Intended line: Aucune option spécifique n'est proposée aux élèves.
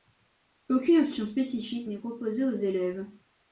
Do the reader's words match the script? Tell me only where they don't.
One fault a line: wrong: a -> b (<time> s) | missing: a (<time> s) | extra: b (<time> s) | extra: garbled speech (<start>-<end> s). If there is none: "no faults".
no faults